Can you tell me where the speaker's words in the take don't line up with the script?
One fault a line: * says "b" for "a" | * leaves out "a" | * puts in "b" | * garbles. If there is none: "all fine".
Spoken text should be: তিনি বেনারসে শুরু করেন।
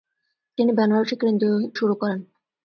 all fine